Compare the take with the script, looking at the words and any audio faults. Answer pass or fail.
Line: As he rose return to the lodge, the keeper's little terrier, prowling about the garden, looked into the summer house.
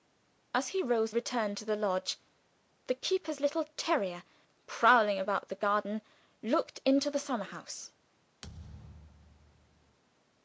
fail